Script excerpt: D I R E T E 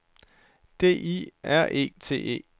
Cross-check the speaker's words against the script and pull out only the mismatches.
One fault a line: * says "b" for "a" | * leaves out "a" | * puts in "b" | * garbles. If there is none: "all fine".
all fine